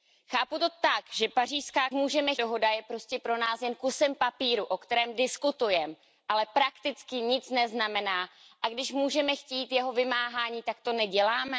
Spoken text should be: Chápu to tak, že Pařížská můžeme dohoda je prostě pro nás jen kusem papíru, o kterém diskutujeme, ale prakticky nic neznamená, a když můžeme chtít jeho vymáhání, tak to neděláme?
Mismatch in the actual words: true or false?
false